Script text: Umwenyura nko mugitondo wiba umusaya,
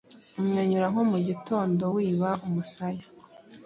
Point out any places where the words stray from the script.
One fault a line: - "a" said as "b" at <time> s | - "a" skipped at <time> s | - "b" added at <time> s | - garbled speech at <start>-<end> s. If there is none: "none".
none